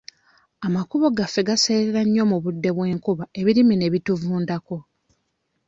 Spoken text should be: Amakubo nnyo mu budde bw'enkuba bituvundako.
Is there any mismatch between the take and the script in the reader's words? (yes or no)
yes